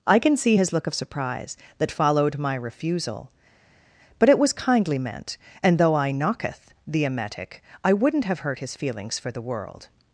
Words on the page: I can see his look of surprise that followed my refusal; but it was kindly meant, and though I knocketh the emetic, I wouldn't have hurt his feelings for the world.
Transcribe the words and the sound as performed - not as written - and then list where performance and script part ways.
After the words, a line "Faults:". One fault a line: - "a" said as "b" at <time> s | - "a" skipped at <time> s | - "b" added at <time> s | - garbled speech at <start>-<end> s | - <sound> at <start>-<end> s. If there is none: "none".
I can see his look of surprise that followed my refusal; but it was kindly meant, and though I knocketh the emetic, I wouldn't have hurt his feelings for the world.
Faults:
none